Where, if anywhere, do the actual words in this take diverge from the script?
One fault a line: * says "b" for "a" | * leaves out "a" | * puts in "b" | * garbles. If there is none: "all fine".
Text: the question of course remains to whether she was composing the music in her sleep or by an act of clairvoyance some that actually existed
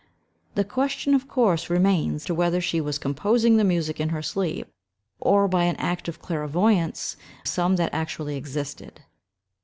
all fine